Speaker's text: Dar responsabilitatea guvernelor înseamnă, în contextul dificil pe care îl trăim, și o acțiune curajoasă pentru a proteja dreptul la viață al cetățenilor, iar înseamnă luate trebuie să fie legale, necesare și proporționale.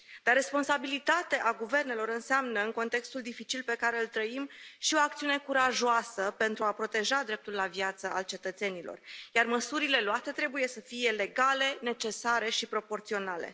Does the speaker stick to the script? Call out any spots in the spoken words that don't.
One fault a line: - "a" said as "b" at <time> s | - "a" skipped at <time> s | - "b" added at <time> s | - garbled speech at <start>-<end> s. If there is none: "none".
- "înseamnă" said as "măsurile" at 9.5 s